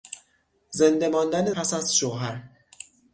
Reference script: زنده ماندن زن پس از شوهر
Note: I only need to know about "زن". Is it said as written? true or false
false